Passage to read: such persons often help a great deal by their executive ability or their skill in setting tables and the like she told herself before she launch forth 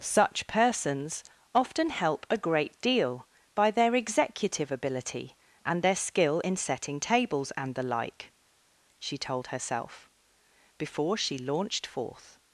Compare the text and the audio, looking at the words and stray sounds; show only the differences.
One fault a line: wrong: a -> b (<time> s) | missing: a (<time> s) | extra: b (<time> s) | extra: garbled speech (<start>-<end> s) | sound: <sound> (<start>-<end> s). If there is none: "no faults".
wrong: or -> and (5.6 s)
wrong: launch -> launched (11.4 s)